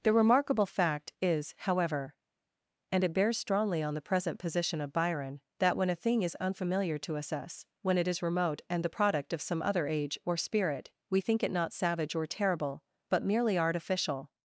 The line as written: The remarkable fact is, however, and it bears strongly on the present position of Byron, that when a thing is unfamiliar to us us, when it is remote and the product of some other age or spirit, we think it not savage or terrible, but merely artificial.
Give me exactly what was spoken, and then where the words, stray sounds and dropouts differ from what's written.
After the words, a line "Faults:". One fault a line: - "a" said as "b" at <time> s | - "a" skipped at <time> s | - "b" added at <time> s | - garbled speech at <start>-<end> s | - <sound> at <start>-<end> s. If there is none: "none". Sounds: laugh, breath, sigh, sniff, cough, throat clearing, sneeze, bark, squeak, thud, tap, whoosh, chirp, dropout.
The remarkable fact is, however, and it bears strongly on the present position of Byron, that when a thing is unfamiliar to us us, when it is remote and the product of some other age or spirit, we think it not savage or terrible, but merely artificial.
Faults:
none